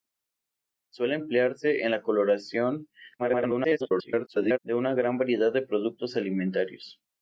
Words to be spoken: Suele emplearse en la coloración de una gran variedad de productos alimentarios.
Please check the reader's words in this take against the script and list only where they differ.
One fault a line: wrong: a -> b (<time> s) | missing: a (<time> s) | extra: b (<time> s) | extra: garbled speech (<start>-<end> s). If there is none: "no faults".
extra: garbled speech (3.2-4.6 s)